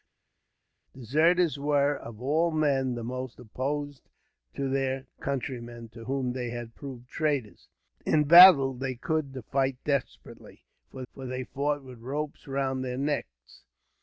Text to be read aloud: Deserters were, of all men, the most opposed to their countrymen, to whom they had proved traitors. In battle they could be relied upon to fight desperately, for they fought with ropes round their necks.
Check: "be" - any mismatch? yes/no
yes